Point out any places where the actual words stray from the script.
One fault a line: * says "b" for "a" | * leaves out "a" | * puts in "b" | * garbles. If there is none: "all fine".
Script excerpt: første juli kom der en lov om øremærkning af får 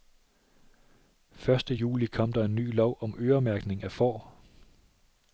* puts in "ny"